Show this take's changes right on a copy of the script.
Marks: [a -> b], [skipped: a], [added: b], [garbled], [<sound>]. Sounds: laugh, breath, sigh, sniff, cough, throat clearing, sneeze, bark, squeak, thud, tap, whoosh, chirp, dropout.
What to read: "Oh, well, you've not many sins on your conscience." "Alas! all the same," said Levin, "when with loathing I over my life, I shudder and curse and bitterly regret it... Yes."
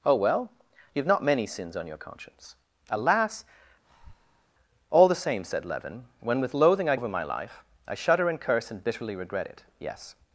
"Oh, well, you've not many sins on your conscience." "Alas! [breath] all the same," said Levin, "when with loathing I over my life, I shudder and curse and bitterly regret it... Yes."